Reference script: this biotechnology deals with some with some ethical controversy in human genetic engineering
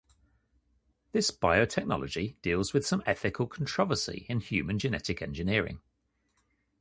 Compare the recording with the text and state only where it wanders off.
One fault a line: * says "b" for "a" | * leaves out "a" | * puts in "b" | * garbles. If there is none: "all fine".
* leaves out "with some"